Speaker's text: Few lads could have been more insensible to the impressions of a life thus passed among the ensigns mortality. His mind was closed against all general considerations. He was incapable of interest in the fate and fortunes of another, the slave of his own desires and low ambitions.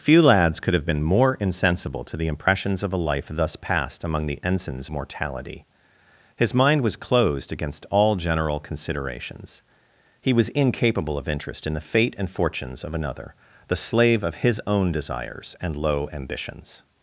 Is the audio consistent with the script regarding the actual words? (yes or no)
yes